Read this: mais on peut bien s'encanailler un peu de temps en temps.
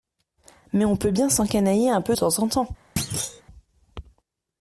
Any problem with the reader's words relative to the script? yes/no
yes